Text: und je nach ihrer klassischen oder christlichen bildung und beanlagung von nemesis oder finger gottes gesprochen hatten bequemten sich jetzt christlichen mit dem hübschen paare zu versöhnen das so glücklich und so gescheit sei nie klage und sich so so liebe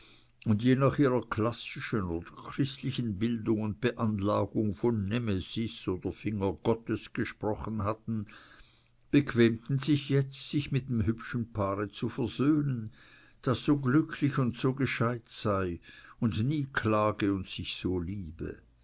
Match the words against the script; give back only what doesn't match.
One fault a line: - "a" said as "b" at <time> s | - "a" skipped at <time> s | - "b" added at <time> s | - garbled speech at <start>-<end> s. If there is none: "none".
- "christlichen" said as "sich" at 10.5 s
- "und" added at 16.2 s
- "so" skipped at 18.0 s